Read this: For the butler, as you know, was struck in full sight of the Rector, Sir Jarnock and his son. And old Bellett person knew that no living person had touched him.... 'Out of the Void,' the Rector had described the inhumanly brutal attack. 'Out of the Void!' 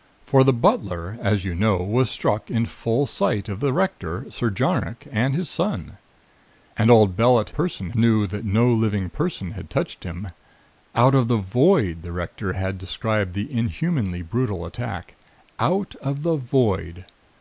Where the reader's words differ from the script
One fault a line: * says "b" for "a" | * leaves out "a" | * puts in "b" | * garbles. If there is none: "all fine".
all fine